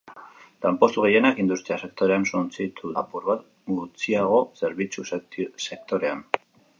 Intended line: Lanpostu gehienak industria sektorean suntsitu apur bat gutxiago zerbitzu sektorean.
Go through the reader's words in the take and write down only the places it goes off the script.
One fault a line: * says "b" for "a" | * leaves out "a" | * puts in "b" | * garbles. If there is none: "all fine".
all fine